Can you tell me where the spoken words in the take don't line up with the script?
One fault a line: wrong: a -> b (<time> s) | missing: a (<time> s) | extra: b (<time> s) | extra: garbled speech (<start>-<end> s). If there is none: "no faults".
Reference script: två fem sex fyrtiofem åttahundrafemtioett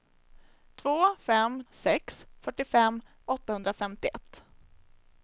no faults